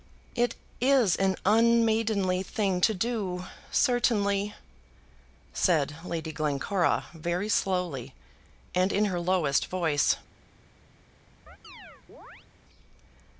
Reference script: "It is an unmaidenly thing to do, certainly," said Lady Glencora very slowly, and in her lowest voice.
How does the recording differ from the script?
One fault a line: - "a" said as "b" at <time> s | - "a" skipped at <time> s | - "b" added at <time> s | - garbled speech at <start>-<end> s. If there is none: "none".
none